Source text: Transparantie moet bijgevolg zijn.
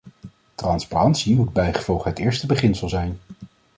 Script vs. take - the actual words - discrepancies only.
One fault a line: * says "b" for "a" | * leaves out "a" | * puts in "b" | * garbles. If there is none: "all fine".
* puts in "het eerste beginsel"